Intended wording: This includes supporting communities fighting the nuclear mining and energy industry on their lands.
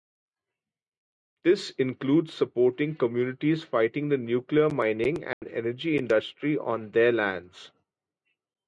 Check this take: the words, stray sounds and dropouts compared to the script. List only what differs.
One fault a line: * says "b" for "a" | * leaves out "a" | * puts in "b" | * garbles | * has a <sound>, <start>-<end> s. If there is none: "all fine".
* has a dropout, 5.3-5.4 s